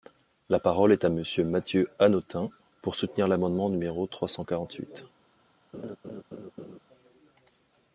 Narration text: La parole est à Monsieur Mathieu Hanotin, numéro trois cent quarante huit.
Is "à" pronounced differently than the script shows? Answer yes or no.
no